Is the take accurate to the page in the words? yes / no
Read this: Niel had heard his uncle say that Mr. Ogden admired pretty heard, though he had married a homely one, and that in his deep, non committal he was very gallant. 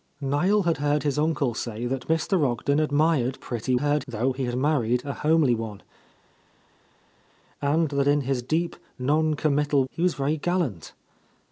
yes